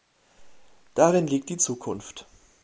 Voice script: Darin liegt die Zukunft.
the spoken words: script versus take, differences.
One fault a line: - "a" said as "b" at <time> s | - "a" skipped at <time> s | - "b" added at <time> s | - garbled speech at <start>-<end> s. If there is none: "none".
none